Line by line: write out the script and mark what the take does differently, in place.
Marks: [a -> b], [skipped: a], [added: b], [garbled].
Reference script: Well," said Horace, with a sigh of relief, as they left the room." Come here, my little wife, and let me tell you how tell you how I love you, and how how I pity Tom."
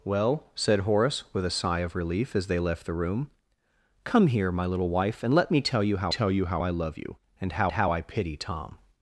Well," said Horace, with a sigh of relief, as they left the room." Come here, my little wife, and let me tell you how tell you how I love you, and how how I pity Tom."